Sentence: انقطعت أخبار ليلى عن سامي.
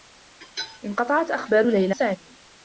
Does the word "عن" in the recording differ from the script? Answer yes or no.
yes